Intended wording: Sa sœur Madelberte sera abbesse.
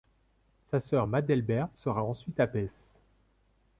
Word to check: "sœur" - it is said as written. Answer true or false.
true